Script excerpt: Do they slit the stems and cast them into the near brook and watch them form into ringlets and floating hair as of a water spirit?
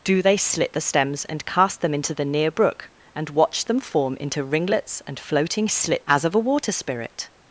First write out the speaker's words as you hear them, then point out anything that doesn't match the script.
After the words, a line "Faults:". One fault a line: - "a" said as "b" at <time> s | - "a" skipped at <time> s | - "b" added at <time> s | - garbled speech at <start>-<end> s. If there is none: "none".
Do they slit the stems and cast them into the near brook and watch them form into ringlets and floating slit as of a water spirit?
Faults:
- "hair" said as "slit" at 5.7 s